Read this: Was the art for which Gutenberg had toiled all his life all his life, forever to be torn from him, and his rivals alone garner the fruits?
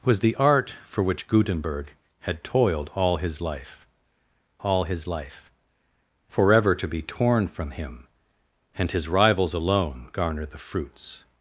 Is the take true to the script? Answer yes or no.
yes